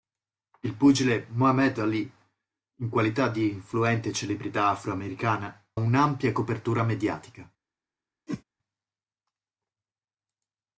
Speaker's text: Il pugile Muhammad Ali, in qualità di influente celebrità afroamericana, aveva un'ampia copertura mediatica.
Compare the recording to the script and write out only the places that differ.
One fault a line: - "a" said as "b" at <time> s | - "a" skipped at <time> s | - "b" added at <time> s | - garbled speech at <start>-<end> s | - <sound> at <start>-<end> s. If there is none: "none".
- "aveva" skipped at 5.7 s
- whoosh at 8.3-8.4 s